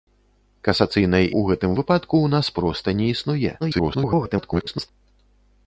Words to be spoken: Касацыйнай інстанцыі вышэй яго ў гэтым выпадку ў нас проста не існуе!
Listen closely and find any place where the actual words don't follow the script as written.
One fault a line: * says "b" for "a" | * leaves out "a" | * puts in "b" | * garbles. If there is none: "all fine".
* leaves out "інстанцыі вышэй яго"
* garbles